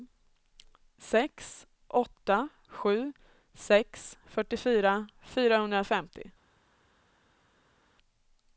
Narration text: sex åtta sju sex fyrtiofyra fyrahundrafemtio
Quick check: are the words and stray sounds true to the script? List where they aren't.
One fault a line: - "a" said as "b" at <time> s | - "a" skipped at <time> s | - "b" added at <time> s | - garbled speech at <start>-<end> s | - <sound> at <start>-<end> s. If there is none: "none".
none